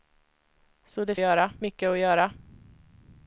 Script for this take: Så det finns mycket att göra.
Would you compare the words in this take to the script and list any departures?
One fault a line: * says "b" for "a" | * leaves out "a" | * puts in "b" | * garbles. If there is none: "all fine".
* says "göra" for "finns"